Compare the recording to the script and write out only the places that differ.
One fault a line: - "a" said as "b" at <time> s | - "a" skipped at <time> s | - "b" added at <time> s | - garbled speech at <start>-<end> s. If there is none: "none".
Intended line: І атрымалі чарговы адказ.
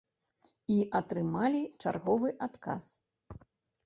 none